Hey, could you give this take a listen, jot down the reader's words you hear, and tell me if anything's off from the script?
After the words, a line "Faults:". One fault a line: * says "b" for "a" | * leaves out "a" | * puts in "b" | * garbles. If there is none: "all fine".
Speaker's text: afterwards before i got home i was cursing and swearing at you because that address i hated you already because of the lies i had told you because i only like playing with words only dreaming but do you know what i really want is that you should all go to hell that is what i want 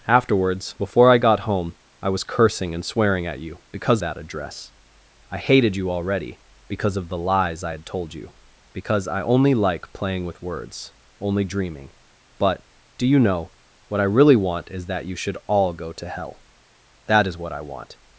afterwards before i got home i was cursing and swearing at you because that address i hated you already because of the lies i had told you because i only like playing with words only dreaming but do you know what i really want is that you should all go to hell that is what i want
Faults:
all fine